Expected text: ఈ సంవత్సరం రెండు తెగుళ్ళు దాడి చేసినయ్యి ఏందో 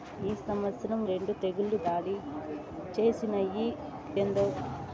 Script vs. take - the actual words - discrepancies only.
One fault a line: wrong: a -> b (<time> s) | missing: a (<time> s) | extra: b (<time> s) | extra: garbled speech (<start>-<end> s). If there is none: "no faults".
no faults